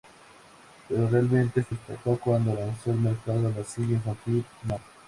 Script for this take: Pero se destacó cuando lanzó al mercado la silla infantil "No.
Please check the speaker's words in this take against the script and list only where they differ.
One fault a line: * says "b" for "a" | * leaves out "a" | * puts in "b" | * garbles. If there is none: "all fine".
* puts in "realmente"